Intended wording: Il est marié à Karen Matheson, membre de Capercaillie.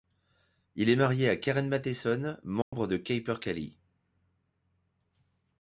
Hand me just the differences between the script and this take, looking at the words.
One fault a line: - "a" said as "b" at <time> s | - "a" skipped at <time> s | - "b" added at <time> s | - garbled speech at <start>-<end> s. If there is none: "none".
none